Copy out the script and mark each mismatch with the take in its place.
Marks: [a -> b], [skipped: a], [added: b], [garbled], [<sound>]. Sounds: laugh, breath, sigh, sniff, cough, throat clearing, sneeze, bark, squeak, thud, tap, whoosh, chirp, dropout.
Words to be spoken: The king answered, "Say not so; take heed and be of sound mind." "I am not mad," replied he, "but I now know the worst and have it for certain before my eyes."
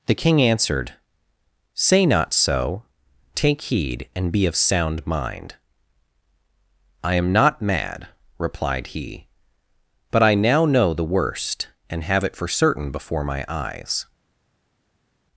The king answered, "Say not so; take heed and be of sound mind." "I am not mad," replied he, "but I now know the worst and have it for certain before my eyes."